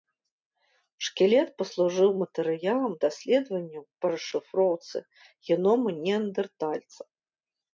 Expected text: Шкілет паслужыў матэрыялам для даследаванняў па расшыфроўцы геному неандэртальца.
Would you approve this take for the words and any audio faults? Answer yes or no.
no